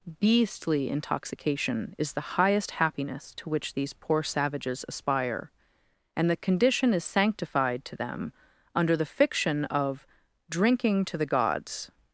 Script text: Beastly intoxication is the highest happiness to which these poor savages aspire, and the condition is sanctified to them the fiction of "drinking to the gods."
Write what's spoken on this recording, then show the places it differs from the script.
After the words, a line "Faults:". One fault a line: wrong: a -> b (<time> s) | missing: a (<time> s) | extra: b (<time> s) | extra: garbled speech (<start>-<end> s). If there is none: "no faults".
Beastly intoxication is the highest happiness to which these poor savages aspire, and the condition is sanctified to them under the fiction of "drinking to the gods."
Faults:
extra: under (8.7 s)